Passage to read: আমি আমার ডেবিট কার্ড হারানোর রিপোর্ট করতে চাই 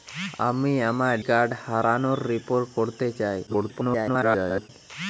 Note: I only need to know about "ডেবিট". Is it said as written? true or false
false